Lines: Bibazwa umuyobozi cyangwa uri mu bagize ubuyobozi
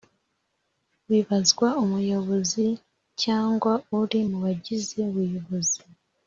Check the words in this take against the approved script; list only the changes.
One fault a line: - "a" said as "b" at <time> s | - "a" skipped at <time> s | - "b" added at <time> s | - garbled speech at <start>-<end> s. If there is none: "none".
none